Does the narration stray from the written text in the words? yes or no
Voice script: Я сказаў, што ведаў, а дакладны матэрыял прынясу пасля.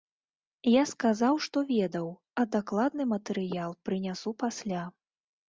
no